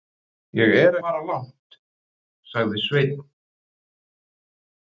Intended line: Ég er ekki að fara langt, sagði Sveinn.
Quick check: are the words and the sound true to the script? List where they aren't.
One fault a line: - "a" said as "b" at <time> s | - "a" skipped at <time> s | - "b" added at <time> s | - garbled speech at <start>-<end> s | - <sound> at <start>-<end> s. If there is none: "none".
- "ekki að" skipped at 0.9 s